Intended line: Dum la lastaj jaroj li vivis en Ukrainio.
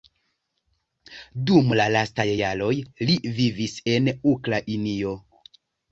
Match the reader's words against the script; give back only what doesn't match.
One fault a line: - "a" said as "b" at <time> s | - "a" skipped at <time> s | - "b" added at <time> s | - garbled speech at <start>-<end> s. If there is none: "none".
none